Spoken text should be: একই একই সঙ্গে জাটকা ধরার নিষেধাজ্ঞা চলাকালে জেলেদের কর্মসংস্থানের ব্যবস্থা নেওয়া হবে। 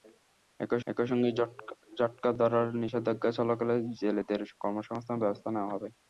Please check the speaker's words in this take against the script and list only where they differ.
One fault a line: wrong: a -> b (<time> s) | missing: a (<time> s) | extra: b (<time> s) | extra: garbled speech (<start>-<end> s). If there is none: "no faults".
no faults